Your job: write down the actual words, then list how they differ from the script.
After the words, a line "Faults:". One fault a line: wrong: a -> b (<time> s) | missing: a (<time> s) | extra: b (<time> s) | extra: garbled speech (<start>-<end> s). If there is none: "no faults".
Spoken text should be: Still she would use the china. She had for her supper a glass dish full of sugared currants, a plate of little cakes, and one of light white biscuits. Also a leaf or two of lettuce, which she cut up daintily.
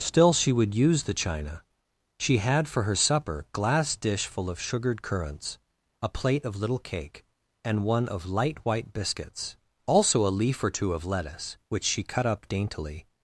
Still she would use the china. She had for her supper glass dish full of sugared currants, a plate of little cake, and one of light white biscuits. Also a leaf or two of lettuce, which she cut up daintily.
Faults:
missing: a (3.5 s)
wrong: cakes -> cake (6.8 s)